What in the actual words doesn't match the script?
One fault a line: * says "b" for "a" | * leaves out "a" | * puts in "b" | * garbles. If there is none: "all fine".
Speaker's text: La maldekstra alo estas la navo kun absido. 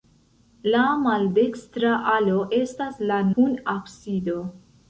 * leaves out "navo"